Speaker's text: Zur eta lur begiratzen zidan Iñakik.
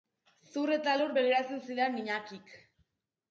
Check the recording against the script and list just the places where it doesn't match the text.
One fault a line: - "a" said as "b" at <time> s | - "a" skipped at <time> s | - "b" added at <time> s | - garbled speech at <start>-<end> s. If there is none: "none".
none